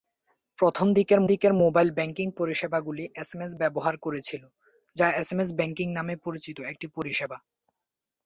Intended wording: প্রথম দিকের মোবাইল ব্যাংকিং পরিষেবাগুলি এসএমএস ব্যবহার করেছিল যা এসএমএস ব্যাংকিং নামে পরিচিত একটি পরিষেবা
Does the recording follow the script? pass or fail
fail